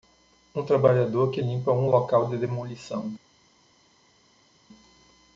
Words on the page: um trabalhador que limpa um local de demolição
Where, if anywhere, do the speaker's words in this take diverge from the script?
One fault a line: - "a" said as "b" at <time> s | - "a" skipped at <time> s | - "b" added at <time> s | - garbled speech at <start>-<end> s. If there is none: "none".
none